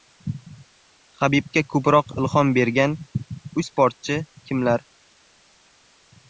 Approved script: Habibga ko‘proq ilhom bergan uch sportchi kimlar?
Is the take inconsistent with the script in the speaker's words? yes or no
yes